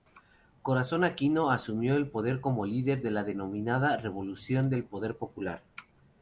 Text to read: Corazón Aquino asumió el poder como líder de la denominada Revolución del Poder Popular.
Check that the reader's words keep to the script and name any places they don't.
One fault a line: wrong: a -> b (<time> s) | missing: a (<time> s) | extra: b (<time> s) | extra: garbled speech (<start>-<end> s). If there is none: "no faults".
no faults